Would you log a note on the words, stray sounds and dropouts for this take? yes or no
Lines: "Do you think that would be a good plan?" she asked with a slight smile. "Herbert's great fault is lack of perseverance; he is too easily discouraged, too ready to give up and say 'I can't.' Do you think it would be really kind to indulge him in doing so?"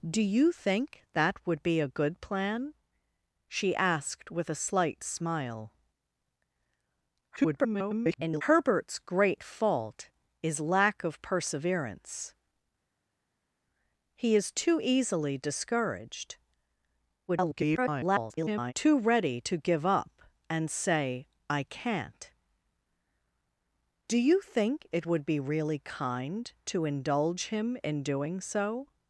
yes